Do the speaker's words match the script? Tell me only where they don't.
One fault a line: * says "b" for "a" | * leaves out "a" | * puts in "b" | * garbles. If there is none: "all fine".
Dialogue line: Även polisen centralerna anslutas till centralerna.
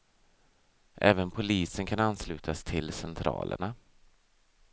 * says "kan" for "centralerna"